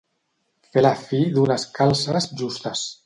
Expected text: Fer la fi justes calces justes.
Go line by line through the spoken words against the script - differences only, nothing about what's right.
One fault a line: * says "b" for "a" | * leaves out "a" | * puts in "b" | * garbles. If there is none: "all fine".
* says "d'unes" for "justes"